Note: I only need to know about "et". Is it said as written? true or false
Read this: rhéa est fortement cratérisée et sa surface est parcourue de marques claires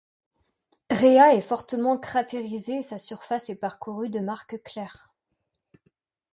true